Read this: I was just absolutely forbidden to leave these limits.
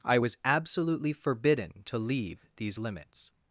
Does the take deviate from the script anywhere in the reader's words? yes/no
yes